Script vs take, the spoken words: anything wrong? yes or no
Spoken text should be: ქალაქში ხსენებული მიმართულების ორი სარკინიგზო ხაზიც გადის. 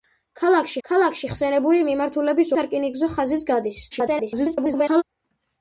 yes